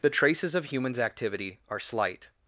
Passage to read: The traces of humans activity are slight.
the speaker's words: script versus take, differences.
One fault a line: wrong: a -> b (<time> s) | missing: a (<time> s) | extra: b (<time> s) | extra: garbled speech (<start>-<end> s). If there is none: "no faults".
no faults